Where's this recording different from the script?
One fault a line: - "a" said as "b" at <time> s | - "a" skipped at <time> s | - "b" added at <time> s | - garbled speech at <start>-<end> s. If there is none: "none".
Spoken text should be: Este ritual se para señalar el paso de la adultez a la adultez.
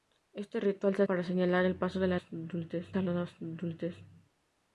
none